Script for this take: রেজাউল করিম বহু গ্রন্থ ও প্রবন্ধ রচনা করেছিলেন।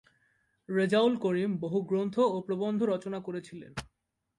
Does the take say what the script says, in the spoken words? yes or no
yes